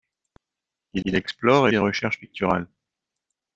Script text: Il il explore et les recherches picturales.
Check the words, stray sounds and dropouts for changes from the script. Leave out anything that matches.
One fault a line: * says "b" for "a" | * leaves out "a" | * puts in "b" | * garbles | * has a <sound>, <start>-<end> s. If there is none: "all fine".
all fine